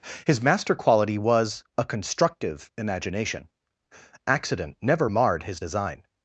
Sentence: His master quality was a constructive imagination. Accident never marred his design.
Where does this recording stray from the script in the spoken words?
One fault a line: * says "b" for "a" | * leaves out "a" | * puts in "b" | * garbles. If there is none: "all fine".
all fine